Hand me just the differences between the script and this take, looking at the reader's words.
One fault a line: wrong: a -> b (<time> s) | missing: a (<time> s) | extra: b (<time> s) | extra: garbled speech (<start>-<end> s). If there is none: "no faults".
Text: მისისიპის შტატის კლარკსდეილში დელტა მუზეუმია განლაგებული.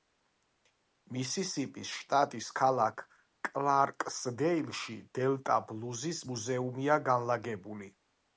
extra: ქალაქ (2.6 s)
extra: ბლუზის (5.7 s)